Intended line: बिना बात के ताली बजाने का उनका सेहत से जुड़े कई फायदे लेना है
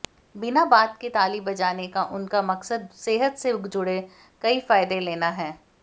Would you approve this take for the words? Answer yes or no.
no